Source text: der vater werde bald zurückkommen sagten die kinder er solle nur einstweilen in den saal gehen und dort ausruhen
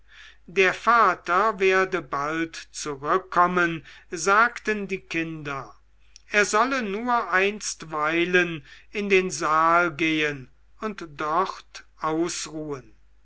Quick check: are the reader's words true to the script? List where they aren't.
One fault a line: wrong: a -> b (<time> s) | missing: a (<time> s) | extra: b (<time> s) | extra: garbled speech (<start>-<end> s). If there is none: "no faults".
no faults